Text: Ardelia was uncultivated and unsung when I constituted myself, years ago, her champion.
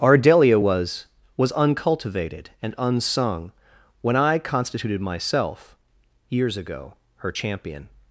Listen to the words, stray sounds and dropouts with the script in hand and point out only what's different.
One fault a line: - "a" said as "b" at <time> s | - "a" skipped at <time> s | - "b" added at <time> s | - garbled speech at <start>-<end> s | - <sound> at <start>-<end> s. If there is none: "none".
- "was" added at 1.3 s